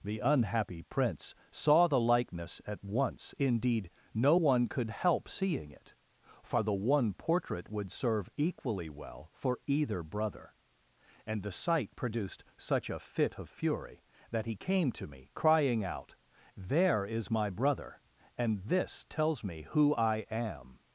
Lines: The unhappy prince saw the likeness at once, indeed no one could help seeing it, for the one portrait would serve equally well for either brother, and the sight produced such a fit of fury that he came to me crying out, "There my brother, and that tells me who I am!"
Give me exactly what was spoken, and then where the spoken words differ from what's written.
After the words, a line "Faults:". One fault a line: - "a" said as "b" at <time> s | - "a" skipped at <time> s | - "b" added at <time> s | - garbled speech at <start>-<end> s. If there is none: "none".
The unhappy prince saw the likeness at once, indeed no one could help seeing it, for the one portrait would serve equally well for either brother, and the sight produced such a fit of fury that he came to me crying out, "There is my brother, and this tells me who I am!"
Faults:
- "is" added at 17.1 s
- "that" said as "this" at 18.6 s